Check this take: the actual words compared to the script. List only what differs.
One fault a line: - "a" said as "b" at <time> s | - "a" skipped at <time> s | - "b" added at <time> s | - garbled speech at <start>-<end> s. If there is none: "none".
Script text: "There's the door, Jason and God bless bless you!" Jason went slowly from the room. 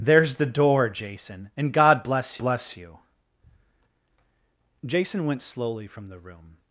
none